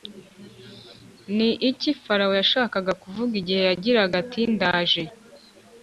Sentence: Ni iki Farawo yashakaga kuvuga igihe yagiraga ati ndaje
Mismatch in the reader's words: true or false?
false